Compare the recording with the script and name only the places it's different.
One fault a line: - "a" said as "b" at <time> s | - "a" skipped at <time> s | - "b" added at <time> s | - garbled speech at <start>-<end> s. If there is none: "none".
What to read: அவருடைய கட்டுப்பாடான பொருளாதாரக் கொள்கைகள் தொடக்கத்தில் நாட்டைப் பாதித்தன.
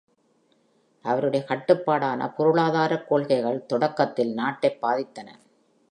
none